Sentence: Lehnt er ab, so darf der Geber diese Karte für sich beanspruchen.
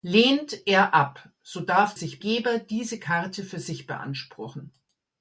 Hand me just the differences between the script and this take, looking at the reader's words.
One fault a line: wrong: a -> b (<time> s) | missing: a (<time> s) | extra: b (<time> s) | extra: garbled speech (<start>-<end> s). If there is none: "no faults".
wrong: der -> sich (1.9 s)